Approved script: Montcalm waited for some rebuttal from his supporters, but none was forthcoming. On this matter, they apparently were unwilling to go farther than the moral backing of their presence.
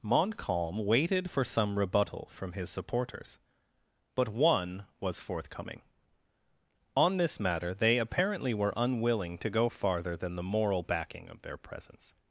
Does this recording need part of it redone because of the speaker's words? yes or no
yes